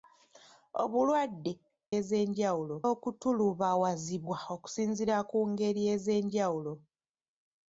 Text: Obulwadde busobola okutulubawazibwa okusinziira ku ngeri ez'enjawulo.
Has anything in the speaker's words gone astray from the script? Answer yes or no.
yes